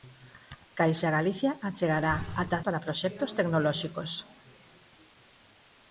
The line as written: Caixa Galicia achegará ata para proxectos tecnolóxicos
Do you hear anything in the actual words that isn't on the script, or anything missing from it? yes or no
no